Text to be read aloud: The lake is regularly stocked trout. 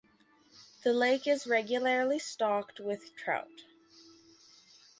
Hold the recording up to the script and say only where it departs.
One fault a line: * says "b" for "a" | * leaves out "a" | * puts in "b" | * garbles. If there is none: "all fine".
* puts in "with"